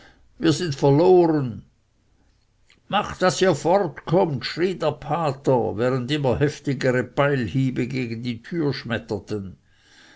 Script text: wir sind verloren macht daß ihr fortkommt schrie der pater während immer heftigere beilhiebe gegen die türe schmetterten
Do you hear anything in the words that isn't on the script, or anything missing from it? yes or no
no